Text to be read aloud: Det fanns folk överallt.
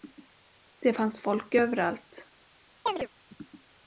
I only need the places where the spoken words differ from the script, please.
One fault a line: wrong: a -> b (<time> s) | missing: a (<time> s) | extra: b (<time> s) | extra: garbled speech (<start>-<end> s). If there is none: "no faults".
no faults